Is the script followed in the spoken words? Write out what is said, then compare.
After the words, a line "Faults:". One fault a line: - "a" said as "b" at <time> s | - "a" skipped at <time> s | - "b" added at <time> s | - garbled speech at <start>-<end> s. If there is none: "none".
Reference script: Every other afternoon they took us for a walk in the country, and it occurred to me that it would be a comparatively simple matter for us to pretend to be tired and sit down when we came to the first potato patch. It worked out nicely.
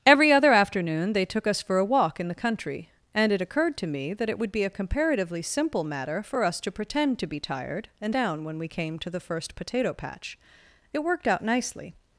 Every other afternoon they took us for a walk in the country, and it occurred to me that it would be a comparatively simple matter for us to pretend to be tired and down when we came to the first potato patch. It worked out nicely.
Faults:
- "sit" skipped at 8.2 s